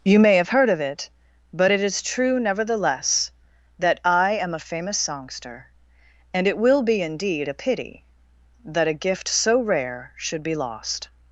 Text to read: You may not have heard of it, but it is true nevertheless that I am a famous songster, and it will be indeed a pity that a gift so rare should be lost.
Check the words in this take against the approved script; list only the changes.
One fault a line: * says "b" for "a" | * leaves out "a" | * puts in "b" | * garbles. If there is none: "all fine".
* leaves out "not"